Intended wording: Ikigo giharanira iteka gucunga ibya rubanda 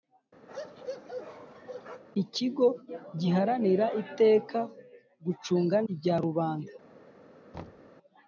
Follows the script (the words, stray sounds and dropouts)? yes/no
no